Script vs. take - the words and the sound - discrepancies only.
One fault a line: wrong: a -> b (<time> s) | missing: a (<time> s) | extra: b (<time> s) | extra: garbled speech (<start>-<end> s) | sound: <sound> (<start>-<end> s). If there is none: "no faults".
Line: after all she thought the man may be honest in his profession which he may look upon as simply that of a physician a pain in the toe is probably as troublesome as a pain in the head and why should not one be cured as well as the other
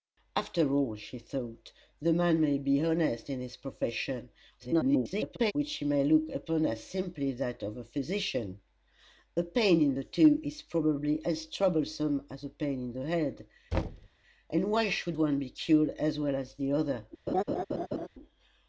extra: garbled speech (4.6-5.5 s)
sound: thud (13.7-14.1 s)
missing: not (15.2 s)
sound: laugh (17.3-18.1 s)